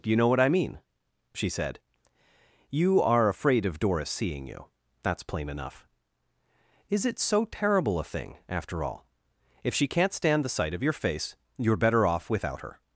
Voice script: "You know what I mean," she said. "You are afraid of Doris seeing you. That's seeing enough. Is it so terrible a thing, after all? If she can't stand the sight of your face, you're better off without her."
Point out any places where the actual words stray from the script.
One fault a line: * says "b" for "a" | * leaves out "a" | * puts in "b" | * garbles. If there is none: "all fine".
* says "plain" for "seeing"